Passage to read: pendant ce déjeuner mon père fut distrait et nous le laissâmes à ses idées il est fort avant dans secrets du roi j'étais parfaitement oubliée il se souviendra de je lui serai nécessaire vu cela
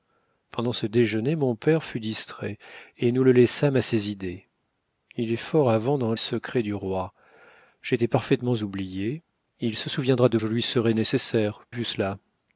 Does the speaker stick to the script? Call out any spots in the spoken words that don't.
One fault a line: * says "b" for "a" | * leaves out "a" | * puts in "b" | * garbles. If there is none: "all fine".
all fine